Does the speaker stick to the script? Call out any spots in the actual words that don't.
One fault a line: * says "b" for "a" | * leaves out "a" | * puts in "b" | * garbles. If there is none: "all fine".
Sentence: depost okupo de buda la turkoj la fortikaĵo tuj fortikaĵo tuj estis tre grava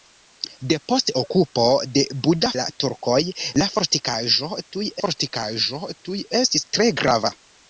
all fine